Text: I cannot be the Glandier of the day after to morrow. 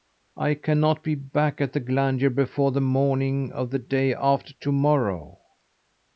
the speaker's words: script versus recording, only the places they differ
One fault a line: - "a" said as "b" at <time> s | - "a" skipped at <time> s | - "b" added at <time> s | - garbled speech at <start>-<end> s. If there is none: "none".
- "back at" added at 1.1 s
- "before the morning" added at 2.3 s